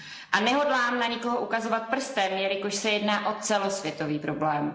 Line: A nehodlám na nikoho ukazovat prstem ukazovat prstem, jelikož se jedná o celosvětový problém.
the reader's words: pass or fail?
fail